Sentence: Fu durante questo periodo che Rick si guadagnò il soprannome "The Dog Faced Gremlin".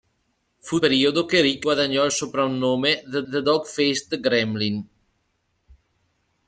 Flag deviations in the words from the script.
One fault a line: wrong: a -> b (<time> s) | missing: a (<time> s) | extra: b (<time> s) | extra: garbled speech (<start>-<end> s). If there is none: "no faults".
missing: durante questo (0.8 s)
missing: si (1.7 s)
extra: the (3.3 s)